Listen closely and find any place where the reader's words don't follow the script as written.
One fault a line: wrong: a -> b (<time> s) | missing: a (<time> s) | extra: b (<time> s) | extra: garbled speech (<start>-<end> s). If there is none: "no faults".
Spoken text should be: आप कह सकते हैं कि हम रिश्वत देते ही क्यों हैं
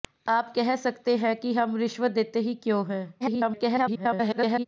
extra: garbled speech (3.2-4.7 s)